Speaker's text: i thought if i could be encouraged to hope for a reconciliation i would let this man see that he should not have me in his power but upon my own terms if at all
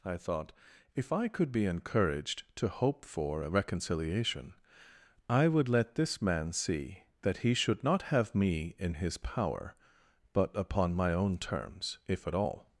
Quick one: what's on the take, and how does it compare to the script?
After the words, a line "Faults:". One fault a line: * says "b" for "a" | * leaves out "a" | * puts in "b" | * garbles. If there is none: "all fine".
i thought if i could be encouraged to hope for a reconciliation i would let this man see that he should not have me in his power but upon my own terms if at all
Faults:
all fine